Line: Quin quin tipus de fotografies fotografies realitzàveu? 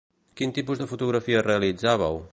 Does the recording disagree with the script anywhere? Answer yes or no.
yes